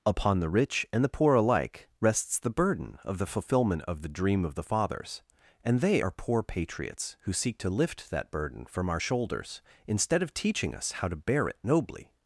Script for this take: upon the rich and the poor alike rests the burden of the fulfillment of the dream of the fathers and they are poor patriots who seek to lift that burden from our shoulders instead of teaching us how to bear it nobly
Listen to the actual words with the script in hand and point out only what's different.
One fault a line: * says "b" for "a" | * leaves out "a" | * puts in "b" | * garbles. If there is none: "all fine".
all fine